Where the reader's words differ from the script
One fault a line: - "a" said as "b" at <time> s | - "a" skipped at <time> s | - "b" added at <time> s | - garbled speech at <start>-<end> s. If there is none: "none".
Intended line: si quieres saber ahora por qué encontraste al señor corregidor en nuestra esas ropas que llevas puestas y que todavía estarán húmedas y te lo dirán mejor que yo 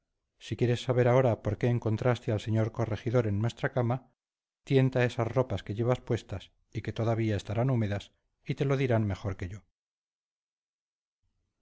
- "cama tienta" added at 3.7 s